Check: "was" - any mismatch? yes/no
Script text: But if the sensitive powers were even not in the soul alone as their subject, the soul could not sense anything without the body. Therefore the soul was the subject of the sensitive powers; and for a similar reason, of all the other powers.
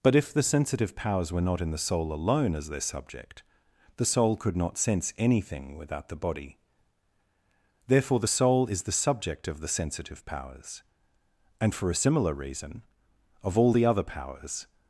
yes